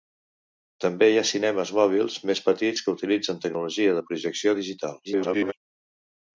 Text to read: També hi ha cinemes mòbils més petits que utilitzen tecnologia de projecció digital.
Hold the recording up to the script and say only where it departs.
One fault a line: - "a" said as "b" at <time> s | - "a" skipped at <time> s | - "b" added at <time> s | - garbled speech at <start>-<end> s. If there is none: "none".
- garbled speech at 5.0-5.5 s